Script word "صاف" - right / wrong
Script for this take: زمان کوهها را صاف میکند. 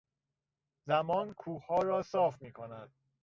right